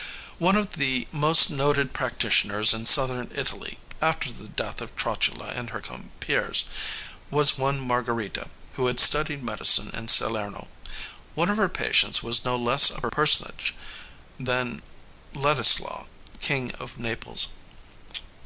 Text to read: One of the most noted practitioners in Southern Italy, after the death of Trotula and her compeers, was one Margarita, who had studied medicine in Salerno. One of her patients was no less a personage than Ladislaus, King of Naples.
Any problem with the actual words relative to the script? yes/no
no